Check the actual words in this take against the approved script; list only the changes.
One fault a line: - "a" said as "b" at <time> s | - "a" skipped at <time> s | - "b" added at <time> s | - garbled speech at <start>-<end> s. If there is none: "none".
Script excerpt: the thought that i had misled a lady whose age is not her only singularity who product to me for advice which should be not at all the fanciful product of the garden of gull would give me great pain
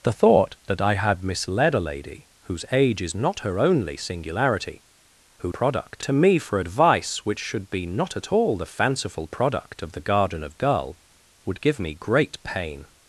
none